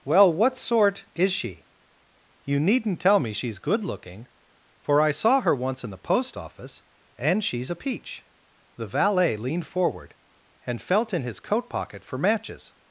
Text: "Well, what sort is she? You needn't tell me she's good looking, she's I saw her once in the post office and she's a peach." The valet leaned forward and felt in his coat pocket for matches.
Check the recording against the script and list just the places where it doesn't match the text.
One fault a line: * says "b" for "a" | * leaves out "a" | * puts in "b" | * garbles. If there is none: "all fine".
* says "for" for "she's"